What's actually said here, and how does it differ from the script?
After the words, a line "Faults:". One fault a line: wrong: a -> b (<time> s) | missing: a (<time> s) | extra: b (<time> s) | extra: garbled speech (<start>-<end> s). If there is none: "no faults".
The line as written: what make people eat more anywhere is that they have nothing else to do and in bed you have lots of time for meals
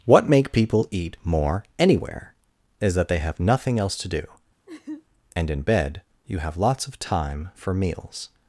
what make people eat more anywhere is that they have nothing else to do and in bed you have lots of time for meals
Faults:
no faults